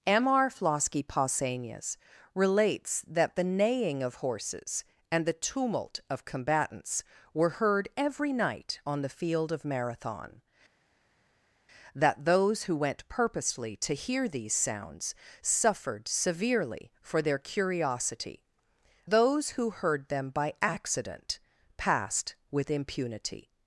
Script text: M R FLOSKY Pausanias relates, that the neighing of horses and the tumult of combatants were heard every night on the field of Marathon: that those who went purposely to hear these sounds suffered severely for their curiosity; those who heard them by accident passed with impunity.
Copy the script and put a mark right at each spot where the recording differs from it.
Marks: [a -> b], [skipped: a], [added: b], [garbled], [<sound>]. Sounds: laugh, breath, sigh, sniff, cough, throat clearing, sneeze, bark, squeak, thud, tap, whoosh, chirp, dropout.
M R FLOSKY Pausanias relates, that the neighing of horses and the tumult of combatants were heard every night on the field of Marathon: that those who went purposely to hear these sounds suffered severely for their curiosity; those who heard them by accident passed with impunity.